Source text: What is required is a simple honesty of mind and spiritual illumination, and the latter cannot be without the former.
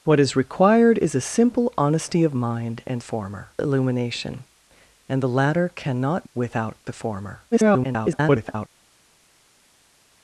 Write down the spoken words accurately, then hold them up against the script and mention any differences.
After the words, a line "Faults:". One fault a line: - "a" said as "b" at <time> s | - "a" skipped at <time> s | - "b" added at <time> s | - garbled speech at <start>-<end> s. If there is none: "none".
What is required is a simple honesty of mind and former illumination, and the latter cannot without the former. [garbled]
Faults:
- "spiritual" said as "former" at 3.0 s
- "be" skipped at 6.3 s
- garbled speech at 7.5-8.7 s